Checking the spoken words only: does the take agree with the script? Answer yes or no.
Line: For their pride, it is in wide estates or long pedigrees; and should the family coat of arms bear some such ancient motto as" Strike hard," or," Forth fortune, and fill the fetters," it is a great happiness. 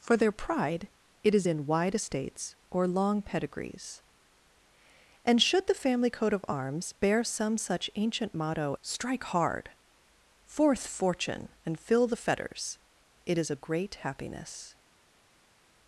no